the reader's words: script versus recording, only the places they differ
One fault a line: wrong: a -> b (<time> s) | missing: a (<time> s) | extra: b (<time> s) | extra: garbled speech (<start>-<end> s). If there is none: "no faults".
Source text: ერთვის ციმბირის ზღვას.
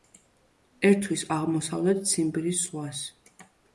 extra: აღმოსავლეთ (1.4 s)